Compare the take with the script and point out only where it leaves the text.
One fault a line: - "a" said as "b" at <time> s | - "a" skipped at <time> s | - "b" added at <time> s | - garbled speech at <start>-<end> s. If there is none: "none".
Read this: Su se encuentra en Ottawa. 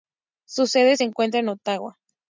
- "sede" added at 0.7 s